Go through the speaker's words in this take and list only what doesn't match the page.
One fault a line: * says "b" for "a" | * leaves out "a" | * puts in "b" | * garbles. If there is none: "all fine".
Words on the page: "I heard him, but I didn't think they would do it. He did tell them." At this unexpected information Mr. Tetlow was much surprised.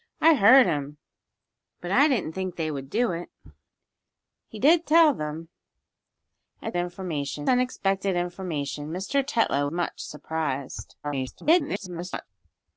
* says "information" for "this"
* leaves out "was"
* garbles